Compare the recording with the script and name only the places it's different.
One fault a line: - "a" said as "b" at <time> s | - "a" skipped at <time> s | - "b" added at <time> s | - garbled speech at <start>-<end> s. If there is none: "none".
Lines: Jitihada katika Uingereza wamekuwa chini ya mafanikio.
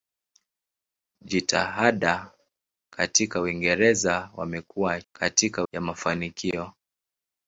- "chini" said as "katika" at 5.1 s